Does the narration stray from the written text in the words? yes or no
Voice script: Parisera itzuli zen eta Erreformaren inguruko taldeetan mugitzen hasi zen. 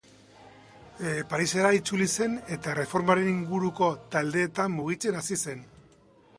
no